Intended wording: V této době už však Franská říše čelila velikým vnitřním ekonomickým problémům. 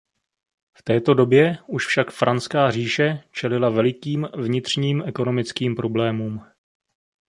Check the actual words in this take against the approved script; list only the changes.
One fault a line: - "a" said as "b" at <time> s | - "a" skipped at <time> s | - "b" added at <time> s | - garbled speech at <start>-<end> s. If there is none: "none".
none